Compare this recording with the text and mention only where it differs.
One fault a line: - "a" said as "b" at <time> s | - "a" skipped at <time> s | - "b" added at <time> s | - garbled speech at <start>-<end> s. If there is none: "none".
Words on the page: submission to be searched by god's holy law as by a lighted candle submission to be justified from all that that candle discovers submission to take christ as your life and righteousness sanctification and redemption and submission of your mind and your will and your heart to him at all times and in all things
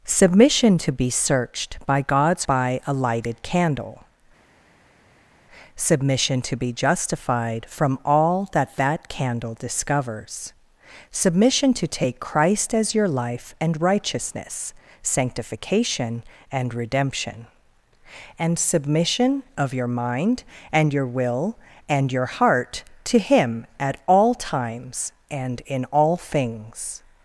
- "holy law as" skipped at 2.5 s